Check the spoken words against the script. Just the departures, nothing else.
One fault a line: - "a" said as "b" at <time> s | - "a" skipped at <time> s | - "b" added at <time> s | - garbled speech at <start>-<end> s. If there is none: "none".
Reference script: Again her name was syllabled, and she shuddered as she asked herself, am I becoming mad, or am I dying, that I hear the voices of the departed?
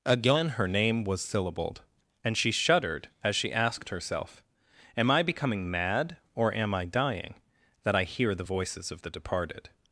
none